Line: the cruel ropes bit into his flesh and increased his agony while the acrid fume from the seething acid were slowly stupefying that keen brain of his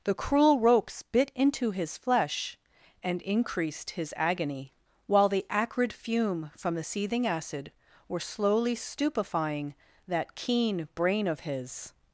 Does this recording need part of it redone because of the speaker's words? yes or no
no